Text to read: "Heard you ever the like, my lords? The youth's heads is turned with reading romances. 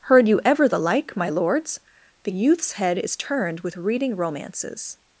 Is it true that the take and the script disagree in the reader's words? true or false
true